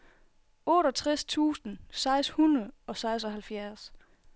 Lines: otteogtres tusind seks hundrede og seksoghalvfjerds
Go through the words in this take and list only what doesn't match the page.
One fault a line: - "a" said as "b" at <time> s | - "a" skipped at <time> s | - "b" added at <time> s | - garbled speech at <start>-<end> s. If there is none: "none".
none